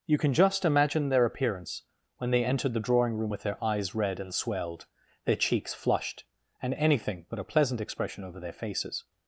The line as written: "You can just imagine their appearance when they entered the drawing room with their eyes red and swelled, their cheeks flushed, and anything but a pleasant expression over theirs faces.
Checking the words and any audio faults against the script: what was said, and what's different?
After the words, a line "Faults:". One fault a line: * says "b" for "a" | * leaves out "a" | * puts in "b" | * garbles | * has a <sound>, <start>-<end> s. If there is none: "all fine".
"You can just imagine their appearance when they entered the drawing room with their eyes red and swelled, their cheeks flushed, and anything but a pleasant expression over their faces.
Faults:
* says "their" for "theirs"